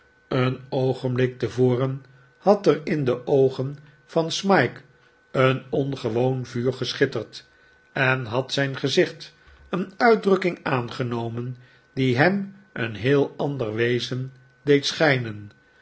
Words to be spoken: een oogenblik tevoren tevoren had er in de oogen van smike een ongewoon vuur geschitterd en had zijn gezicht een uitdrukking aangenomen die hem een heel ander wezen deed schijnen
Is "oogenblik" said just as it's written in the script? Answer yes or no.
yes